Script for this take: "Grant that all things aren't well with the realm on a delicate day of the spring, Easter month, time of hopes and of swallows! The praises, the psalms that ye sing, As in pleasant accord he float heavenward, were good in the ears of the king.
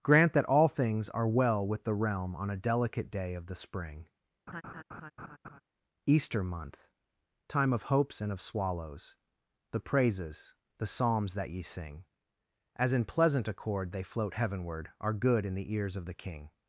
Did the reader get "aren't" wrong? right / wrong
wrong